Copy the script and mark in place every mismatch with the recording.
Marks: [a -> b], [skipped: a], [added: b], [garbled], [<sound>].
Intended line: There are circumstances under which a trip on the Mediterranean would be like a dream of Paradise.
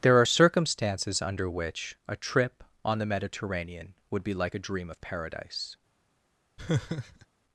There are circumstances under which a trip on the Mediterranean would be like a dream of Paradise. [laugh]